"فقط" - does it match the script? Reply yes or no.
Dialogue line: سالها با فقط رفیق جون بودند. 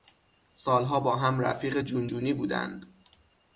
no